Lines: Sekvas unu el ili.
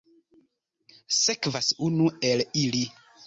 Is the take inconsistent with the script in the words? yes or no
no